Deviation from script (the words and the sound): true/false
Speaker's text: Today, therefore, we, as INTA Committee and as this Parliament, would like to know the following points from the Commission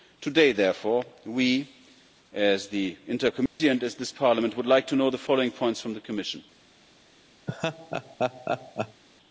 true